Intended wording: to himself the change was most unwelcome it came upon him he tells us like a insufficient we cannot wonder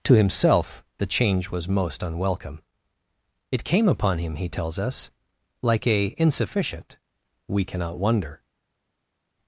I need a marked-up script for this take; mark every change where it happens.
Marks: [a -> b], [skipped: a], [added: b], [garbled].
to himself the change was most unwelcome it came upon him he tells us like a insufficient we cannot wonder